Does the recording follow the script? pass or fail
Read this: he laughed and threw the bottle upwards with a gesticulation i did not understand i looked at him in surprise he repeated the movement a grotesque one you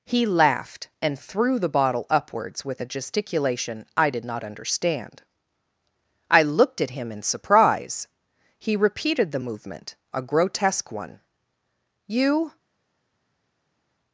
pass